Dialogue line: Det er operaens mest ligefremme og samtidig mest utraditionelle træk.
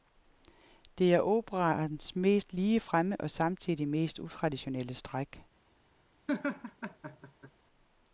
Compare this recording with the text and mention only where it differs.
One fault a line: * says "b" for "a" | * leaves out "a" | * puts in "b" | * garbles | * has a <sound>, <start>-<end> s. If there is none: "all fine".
* has a laugh, 6.3-7.5 s